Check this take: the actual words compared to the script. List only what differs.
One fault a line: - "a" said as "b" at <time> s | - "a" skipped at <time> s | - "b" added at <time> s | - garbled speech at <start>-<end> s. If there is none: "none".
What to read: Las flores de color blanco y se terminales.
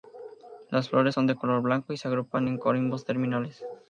- "son" added at 1.1 s
- "agrupan en corimbos" added at 2.1 s